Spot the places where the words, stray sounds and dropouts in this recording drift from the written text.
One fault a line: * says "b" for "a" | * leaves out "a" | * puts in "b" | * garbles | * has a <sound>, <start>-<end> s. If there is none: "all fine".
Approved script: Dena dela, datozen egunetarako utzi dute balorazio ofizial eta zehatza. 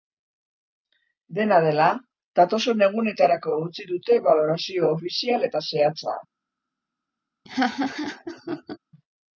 * has a laugh, 7.5-8.8 s